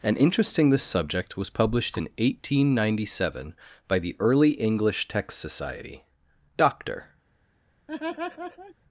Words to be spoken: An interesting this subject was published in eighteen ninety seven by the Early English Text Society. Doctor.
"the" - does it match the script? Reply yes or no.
yes